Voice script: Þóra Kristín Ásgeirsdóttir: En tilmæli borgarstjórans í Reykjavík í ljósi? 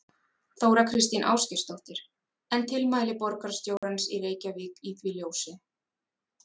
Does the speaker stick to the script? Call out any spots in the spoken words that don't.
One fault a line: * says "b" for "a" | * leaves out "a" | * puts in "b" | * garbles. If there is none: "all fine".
* puts in "því"